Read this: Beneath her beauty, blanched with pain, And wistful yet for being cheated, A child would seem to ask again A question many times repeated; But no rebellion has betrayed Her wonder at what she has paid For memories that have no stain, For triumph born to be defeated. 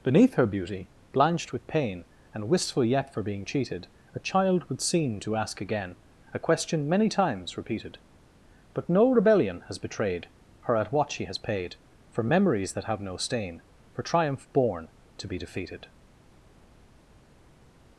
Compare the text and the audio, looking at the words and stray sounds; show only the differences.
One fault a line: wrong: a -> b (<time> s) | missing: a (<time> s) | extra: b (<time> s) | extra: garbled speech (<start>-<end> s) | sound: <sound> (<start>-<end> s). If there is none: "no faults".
missing: wonder (10.8 s)